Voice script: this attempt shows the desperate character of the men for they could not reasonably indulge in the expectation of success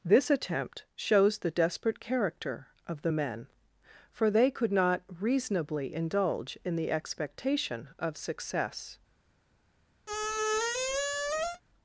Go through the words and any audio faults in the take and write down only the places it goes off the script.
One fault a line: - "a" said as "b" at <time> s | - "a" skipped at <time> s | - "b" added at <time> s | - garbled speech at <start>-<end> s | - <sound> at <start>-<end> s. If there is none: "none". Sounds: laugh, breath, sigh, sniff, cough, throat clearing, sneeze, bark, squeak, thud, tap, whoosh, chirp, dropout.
- squeak at 10.1-11.6 s